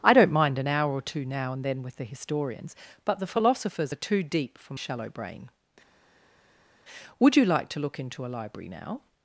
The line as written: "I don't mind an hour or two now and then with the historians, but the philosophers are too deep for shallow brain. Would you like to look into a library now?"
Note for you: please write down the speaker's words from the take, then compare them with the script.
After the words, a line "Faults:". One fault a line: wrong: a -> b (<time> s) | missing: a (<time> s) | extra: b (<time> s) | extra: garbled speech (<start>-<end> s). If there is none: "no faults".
"I don't mind an hour or two now and then with the historians, but the philosophers are too deep for shallow brain. Would you like to look into a library now?"
Faults:
no faults